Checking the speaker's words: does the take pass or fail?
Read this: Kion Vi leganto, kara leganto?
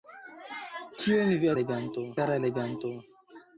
pass